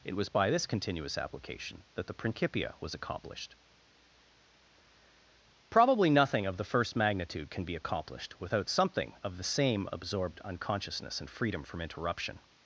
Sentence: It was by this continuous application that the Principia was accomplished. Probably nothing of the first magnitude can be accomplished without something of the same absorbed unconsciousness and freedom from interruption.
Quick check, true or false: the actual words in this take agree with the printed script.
true